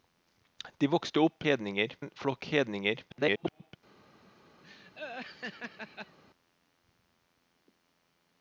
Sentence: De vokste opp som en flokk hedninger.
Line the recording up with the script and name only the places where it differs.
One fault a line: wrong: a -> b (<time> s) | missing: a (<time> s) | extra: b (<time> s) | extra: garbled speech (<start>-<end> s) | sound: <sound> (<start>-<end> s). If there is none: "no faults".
wrong: som -> hedninger (1.4 s)
extra: garbled speech (3.1-3.8 s)
sound: laugh (4.6-6.2 s)